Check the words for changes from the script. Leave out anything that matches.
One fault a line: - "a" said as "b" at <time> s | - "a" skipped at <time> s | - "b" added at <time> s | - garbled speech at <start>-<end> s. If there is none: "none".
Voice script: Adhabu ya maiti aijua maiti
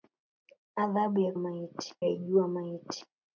none